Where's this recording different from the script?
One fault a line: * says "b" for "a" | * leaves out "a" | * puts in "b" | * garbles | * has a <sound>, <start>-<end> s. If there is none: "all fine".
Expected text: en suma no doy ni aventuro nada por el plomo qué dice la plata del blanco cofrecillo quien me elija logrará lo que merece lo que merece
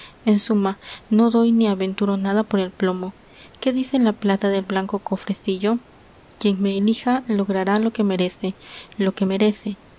all fine